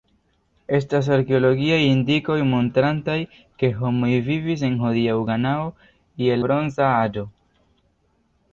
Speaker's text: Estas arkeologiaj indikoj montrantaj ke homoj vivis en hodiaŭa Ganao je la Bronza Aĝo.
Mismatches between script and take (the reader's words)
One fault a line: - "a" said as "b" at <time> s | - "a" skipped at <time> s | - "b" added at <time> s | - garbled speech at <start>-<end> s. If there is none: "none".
- "la" skipped at 6.4 s